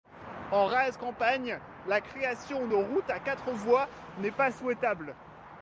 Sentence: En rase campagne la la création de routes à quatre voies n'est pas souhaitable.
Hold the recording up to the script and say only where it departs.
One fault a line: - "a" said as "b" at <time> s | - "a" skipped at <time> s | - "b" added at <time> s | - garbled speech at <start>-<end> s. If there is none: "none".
- "la" skipped at 2.0 s